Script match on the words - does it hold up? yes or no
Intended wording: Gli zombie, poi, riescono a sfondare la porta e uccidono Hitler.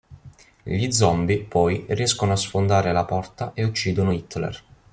yes